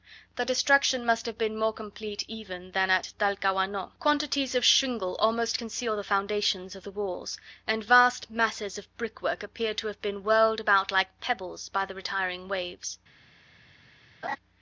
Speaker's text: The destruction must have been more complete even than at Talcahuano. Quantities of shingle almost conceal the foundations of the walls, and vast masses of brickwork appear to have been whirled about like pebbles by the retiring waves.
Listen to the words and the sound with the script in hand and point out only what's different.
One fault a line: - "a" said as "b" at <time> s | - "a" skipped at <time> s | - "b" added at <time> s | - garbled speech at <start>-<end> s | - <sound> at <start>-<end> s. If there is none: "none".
- laugh at 14.2-14.4 s